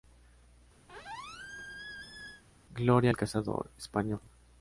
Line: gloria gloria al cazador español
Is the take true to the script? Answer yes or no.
no